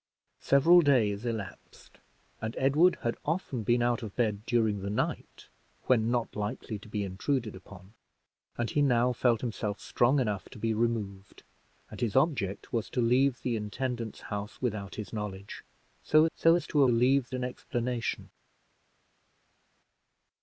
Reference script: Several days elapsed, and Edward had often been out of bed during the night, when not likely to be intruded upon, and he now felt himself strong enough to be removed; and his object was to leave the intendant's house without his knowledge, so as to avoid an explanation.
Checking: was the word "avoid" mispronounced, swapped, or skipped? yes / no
yes